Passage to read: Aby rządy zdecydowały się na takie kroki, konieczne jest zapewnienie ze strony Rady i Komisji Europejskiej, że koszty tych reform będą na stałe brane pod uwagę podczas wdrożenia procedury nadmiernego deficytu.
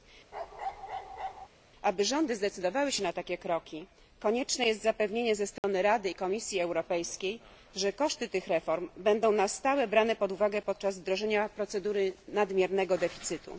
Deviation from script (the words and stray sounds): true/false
true